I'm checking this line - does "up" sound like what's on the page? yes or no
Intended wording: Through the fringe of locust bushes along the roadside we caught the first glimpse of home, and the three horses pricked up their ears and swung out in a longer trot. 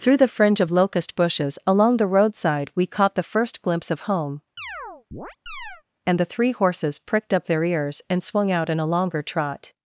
yes